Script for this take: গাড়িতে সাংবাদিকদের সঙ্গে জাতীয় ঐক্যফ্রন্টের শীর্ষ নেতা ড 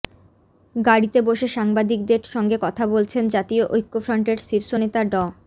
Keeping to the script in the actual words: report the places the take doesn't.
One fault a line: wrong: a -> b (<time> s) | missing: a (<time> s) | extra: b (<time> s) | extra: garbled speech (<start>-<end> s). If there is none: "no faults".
extra: বসে (1.2 s)
extra: কথা বলছেন (2.6 s)